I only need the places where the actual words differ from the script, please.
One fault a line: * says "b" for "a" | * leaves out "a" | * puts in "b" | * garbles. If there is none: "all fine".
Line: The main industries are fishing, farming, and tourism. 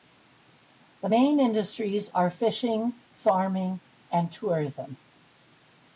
all fine